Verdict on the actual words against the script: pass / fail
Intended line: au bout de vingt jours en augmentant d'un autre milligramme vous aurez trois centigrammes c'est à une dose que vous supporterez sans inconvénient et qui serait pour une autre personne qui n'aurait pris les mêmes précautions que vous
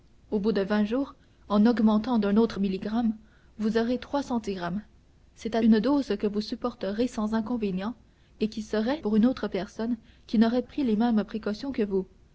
pass